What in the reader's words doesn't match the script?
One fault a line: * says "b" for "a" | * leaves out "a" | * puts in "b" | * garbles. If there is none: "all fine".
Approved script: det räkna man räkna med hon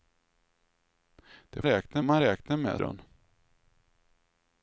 all fine